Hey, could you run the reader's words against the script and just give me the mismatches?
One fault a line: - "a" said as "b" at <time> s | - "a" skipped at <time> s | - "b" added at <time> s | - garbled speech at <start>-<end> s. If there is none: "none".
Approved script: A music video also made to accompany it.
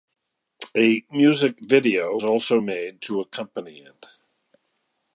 none